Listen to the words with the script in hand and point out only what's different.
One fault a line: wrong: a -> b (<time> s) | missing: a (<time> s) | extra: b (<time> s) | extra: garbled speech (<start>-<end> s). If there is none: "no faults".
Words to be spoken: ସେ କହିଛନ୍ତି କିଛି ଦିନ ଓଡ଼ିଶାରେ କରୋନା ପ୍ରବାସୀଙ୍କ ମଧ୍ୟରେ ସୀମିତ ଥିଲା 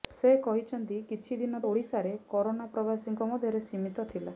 no faults